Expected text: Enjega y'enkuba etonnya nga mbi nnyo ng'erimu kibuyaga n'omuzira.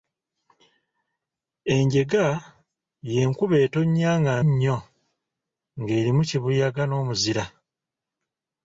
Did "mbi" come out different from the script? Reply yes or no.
yes